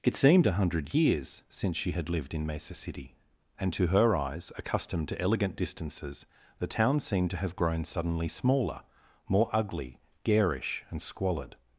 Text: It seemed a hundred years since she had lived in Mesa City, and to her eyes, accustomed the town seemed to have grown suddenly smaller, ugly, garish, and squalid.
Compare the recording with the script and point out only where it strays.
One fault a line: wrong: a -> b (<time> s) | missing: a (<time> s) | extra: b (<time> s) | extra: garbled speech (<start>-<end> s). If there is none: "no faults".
extra: to elegant distances (5.1 s)
extra: more (9.3 s)